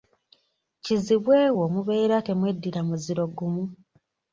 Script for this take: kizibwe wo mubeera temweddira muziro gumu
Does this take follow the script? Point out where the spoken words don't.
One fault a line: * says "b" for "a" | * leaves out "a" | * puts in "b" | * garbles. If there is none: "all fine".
all fine